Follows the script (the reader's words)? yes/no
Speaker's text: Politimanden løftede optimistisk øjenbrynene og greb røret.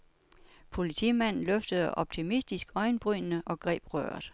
yes